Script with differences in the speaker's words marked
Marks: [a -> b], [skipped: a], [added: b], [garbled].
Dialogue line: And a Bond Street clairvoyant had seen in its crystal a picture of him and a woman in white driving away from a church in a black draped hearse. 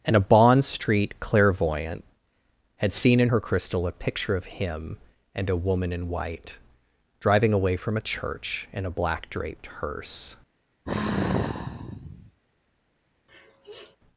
And a Bond Street clairvoyant had seen in [its -> her] crystal a picture of him and a woman in white driving away from a church in a black draped hearse.